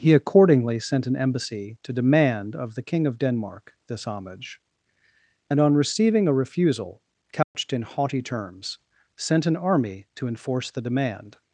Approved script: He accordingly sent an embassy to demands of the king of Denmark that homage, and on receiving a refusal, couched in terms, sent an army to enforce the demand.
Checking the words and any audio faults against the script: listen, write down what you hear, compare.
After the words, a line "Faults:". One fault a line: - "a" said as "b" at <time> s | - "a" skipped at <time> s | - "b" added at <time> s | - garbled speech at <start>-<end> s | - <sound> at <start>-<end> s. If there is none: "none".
He accordingly sent an embassy to demand of the king of Denmark this homage, and on receiving a refusal, couched in haughty terms, sent an army to enforce the demand.
Faults:
- "demands" said as "demand" at 1.9 s
- "that" said as "this" at 3.9 s
- dropout at 7.4-7.5 s
- "haughty" added at 7.8 s